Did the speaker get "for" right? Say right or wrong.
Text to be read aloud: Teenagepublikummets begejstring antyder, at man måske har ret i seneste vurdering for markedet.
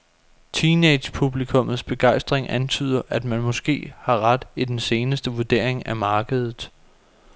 wrong